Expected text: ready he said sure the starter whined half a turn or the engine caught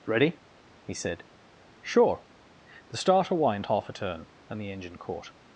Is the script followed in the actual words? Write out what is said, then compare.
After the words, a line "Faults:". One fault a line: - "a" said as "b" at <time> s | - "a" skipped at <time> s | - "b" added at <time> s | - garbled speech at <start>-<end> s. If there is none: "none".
ready he said sure the starter whined half a turn and the engine caught
Faults:
- "or" said as "and" at 4.5 s